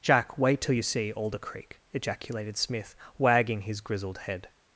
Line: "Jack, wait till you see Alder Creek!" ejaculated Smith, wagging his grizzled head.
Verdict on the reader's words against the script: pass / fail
pass